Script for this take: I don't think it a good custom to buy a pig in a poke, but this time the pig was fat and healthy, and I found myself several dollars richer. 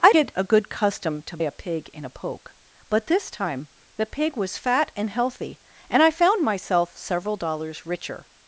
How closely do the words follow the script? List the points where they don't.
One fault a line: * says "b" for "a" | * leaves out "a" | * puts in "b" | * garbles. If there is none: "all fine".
* leaves out "don't think"
* leaves out "buy"